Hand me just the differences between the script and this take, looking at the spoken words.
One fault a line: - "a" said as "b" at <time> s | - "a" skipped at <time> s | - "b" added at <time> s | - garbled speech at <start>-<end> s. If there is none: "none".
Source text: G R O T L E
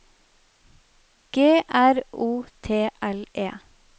none